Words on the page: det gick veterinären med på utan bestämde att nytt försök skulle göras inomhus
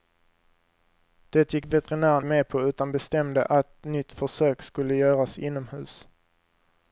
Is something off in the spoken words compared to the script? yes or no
no